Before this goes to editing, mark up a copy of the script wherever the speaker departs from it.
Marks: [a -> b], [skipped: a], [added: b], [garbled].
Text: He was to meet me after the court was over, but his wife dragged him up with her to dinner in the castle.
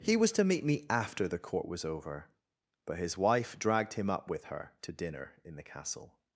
He was to meet me after the court was over, but his wife dragged him up with her to dinner in the castle.